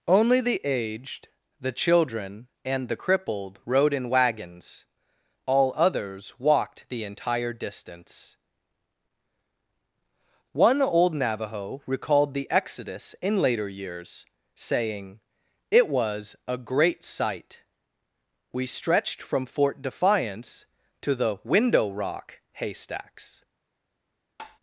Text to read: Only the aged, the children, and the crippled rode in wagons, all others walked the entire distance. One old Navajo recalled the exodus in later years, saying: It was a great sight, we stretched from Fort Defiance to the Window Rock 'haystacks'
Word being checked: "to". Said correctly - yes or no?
yes